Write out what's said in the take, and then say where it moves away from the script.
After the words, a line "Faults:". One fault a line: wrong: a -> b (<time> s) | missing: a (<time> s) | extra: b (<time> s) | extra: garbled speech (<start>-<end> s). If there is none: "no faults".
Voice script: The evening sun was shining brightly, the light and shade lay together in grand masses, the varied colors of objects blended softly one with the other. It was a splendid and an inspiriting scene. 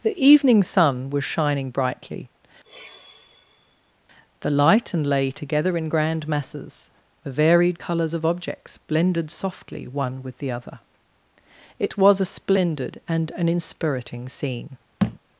The evening sun was shining brightly, the light and lay together in grand masses, the varied colors of objects blended softly one with the other. It was a splendid and an inspiriting scene.
Faults:
missing: shade (5.1 s)